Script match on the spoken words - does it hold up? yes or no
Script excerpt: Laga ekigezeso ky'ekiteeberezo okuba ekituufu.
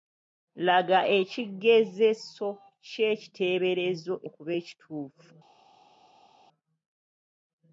yes